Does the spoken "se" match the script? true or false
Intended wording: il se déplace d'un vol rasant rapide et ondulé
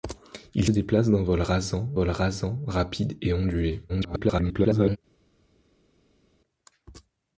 false